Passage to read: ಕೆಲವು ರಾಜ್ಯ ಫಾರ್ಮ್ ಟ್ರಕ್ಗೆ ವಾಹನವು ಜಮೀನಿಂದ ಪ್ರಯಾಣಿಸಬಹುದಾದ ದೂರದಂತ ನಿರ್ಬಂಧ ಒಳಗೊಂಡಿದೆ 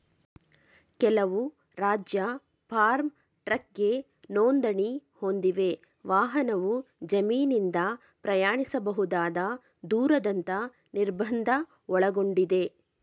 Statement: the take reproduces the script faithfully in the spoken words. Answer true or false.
false